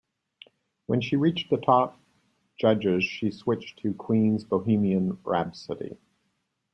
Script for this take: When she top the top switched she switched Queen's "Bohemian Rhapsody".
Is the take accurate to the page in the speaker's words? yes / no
no